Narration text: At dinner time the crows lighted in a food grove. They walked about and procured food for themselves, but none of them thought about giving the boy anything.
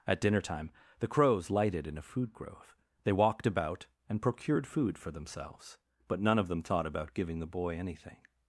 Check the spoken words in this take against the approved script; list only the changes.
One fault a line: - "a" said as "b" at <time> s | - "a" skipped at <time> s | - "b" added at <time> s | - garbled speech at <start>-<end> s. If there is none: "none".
none